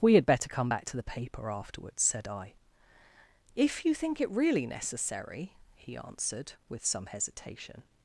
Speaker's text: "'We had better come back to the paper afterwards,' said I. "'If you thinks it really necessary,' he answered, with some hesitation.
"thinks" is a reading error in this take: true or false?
true